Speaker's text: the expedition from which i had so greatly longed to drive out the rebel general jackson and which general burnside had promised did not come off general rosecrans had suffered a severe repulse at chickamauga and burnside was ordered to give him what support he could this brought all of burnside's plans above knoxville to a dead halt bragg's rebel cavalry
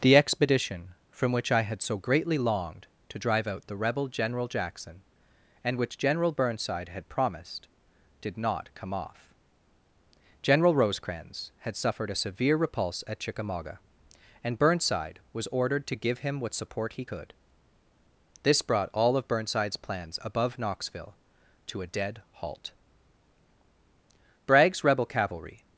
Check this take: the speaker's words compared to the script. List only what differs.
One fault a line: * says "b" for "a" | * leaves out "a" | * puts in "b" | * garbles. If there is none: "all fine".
all fine